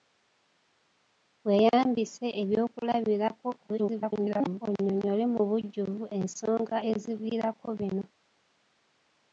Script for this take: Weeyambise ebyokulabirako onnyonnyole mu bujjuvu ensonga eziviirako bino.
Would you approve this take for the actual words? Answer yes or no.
no